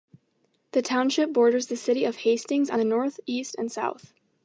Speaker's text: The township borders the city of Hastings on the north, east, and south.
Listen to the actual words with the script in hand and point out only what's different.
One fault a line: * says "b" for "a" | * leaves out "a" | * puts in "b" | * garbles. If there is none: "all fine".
all fine